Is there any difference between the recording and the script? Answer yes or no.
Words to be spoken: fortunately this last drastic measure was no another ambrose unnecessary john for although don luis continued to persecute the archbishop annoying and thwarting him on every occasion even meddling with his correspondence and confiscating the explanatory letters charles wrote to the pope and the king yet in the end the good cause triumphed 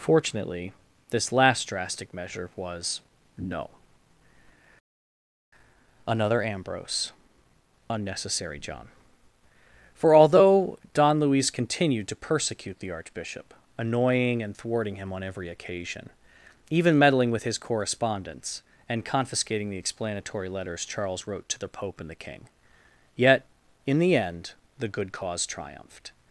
no